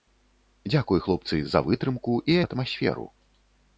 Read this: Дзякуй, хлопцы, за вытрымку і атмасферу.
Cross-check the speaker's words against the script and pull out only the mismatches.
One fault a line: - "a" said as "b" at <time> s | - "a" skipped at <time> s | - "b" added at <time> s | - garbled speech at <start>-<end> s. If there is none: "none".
none